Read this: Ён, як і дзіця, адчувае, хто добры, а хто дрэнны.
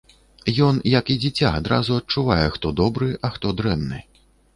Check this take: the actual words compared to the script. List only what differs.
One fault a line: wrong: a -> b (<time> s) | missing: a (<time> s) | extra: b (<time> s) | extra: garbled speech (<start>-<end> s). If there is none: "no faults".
extra: адразу (1.6 s)